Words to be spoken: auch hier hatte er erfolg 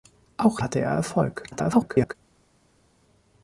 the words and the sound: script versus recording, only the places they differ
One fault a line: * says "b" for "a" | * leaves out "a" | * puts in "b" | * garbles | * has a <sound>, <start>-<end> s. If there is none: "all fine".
* leaves out "hier"
* garbles